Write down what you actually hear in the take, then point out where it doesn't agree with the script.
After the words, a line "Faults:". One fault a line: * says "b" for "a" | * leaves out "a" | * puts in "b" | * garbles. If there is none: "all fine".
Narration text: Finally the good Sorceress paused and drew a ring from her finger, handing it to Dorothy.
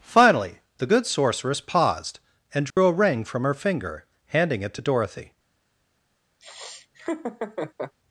Finally the good Sorceress paused and drew a ring from her finger, handing it to Dorothy.
Faults:
all fine